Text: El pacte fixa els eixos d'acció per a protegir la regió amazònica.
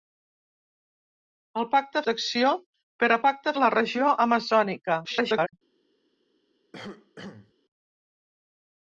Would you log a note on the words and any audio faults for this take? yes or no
yes